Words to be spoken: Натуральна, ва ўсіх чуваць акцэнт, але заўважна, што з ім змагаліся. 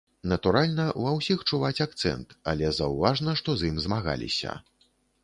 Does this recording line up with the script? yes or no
yes